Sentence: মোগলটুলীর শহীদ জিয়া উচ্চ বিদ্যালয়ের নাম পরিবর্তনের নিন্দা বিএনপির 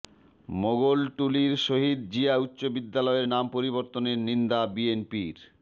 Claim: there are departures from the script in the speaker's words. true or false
false